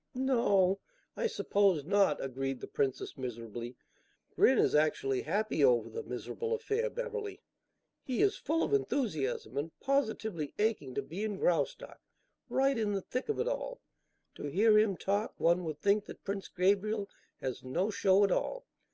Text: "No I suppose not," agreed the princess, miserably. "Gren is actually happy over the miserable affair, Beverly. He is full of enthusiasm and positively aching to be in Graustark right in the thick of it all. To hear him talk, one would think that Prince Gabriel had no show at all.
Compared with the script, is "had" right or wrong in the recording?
wrong